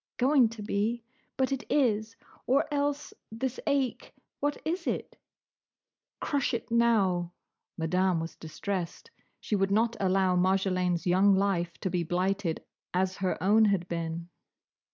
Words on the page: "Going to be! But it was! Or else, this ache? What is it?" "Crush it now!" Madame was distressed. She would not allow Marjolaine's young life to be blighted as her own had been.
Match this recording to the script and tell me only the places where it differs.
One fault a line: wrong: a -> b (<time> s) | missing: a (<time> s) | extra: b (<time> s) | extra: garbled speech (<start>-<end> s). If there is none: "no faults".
wrong: was -> is (1.7 s)